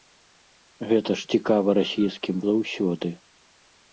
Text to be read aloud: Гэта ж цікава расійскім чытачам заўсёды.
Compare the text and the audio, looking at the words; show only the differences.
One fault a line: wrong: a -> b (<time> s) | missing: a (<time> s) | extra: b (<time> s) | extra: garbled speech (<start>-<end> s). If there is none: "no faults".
missing: чытачам (2.4 s)